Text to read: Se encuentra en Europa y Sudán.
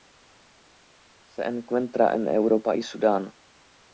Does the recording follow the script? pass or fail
pass